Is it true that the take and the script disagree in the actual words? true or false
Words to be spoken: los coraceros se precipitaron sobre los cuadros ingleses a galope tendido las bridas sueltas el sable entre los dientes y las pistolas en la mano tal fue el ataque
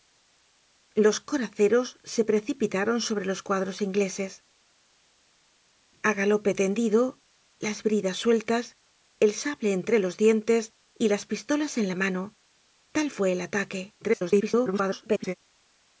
true